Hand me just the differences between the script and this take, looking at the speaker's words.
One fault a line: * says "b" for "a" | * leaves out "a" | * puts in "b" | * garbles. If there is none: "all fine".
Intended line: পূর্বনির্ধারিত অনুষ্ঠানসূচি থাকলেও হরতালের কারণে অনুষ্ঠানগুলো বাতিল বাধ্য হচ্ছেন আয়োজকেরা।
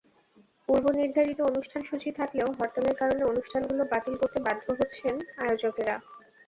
* puts in "করতে"